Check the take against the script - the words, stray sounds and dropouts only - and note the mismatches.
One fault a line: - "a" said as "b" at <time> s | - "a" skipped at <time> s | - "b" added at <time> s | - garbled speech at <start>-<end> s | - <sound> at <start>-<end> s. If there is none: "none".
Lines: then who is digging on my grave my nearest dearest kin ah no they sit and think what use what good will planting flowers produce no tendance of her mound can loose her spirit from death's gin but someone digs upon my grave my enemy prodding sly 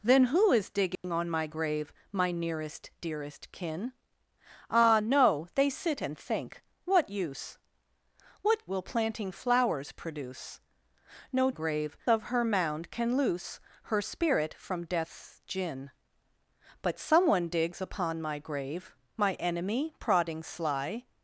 - dropout at 1.0-1.0 s
- "good" skipped at 8.7 s
- "tendance" said as "grave" at 11.5 s